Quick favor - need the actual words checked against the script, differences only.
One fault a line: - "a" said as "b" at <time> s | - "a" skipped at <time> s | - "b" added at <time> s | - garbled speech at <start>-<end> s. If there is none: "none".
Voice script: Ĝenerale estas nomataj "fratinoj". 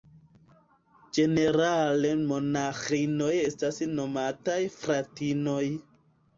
- "monaĥinoj" added at 2.3 s